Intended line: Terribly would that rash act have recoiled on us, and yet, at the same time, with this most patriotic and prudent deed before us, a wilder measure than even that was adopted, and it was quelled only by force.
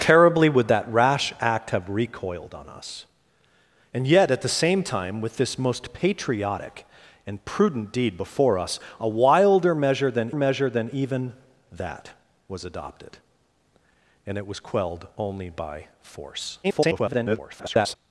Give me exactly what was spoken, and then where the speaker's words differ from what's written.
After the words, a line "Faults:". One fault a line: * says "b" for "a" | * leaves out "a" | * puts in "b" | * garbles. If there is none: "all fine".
Terribly would that rash act have recoiled on us, and yet, at the same time, with this most patriotic and prudent deed before us, a wilder measure than measure than even that was adopted, and it was quelled only by force. [garbled]
Faults:
* puts in "measure than"
* garbles